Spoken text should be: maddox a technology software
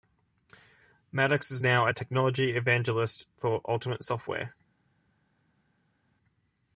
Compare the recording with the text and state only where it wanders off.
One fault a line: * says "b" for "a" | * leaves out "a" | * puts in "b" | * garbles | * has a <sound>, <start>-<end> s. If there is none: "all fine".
* puts in "is now"
* puts in "evangelist for ultimate"